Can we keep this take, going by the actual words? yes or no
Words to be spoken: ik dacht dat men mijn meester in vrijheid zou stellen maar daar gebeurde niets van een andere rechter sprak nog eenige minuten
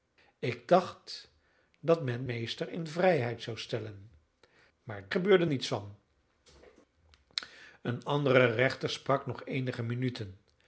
no